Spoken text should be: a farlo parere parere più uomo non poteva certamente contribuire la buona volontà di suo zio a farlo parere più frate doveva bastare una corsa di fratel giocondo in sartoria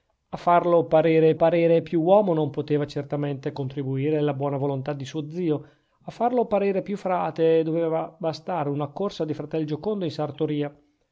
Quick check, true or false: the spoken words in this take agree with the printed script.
true